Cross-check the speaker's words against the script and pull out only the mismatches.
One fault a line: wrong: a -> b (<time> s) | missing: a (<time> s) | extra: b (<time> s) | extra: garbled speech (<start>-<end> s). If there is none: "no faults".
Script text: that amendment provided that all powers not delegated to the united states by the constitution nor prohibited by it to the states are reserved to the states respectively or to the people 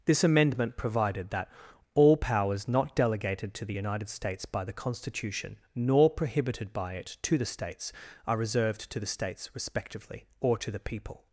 wrong: that -> this (0.1 s)